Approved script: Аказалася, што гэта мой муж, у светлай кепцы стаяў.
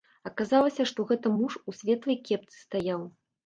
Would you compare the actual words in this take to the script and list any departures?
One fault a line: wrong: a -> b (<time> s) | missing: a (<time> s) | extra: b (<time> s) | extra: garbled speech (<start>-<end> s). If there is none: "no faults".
missing: мой (1.3 s)